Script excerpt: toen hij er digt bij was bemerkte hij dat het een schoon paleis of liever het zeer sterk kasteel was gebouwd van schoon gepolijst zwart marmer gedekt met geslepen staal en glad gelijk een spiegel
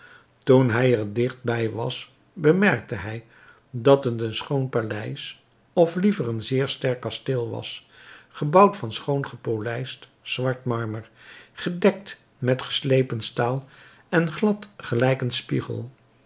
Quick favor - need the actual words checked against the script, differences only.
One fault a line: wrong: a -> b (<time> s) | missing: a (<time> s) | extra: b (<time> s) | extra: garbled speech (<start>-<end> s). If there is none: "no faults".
wrong: het -> een (6.3 s)